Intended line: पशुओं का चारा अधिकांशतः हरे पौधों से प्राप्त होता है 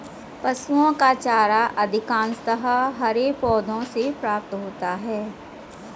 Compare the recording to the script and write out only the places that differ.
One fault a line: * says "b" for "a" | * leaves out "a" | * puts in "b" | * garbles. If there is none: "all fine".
all fine